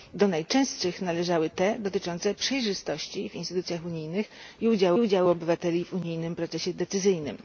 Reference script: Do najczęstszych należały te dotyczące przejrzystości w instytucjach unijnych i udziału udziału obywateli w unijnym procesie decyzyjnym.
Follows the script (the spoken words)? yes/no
yes